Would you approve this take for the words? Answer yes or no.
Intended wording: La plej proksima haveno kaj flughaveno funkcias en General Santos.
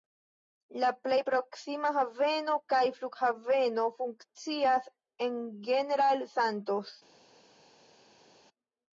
yes